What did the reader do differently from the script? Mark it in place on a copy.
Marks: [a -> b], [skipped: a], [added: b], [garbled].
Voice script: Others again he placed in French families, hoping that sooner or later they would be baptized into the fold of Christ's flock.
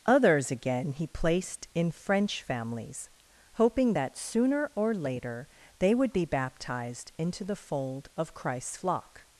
Others again he placed in French families, hoping that sooner or later they would be baptized into the fold of Christ's flock.